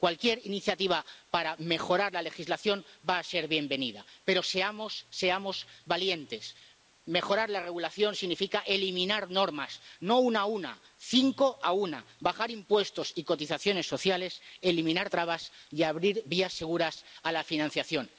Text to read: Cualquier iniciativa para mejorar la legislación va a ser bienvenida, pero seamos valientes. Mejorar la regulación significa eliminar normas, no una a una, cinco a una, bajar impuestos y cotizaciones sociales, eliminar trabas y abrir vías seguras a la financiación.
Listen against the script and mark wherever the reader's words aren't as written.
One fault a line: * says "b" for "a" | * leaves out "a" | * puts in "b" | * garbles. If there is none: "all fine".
all fine